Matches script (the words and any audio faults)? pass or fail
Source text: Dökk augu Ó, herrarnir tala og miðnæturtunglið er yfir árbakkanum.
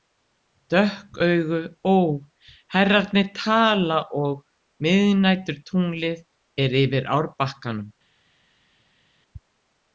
pass